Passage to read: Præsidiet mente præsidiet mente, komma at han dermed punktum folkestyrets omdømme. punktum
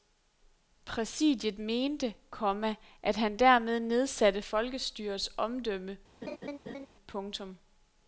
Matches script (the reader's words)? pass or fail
fail